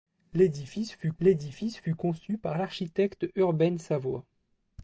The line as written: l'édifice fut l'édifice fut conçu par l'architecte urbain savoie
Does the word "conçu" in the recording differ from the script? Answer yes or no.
no